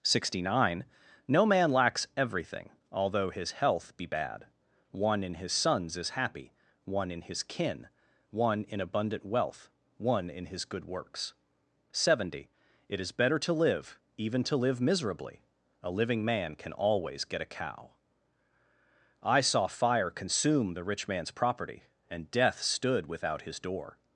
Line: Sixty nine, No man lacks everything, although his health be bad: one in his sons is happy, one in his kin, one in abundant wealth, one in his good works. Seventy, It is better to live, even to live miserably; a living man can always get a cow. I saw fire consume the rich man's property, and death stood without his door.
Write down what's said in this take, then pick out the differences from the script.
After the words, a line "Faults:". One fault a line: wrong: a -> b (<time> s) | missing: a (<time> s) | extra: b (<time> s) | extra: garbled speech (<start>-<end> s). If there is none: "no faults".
Sixty nine, No man lacks everything, although his health be bad: one in his sons is happy, one in his kin, one in abundant wealth, one in his good works. Seventy, It is better to live, even to live miserably; a living man can always get a cow. I saw fire consume the rich man's property, and death stood without his door.
Faults:
no faults